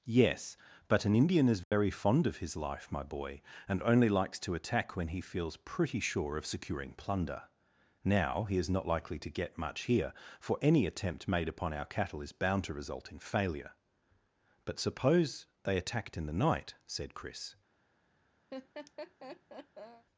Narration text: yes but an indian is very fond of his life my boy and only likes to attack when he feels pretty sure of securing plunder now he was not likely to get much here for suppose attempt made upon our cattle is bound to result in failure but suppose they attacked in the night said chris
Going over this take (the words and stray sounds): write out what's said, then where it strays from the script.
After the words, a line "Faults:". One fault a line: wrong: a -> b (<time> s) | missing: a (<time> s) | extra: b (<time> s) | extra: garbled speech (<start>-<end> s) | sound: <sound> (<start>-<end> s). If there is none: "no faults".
yes but an indian is very fond of his life my boy and only likes to attack when he feels pretty sure of securing plunder now he is not likely to get much here for any attempt made upon our cattle is bound to result in failure but suppose they attacked in the night said chris
Faults:
sound: dropout (1.6-1.7 s)
wrong: was -> is (8.6 s)
wrong: suppose -> any (10.6 s)
sound: laugh (18.5-20.1 s)